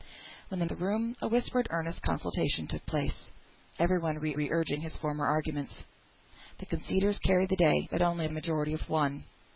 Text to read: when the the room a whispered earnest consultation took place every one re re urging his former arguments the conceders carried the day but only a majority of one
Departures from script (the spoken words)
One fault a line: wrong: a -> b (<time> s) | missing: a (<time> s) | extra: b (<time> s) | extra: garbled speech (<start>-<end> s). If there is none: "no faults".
no faults